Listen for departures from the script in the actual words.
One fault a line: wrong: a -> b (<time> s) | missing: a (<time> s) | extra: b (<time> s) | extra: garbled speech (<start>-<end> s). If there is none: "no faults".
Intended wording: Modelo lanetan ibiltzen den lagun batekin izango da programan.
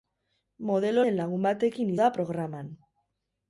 missing: lanetan ibiltzen (1.0 s)
missing: izango (1.9 s)